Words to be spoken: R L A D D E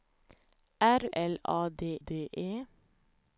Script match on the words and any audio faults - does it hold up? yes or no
yes